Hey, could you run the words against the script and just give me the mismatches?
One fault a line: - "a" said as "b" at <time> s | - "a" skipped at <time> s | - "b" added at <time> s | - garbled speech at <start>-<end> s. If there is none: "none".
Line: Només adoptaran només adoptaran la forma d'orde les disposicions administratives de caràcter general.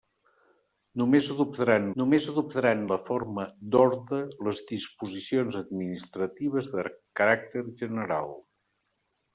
none